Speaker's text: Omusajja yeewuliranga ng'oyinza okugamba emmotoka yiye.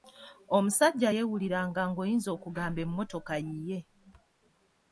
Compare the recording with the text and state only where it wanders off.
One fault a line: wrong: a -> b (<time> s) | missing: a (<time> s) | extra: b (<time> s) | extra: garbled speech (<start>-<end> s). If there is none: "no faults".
no faults